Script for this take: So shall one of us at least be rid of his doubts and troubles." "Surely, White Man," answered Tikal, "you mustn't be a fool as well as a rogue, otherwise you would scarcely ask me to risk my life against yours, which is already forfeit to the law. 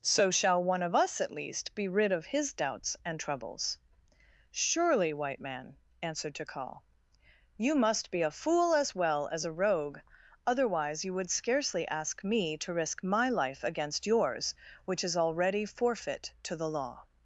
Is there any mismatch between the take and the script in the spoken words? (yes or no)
yes